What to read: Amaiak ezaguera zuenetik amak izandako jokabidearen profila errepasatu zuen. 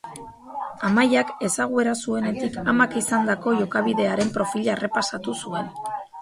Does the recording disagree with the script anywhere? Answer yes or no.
no